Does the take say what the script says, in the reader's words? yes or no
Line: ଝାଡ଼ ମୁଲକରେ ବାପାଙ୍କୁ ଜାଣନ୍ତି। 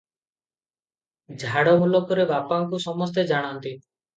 no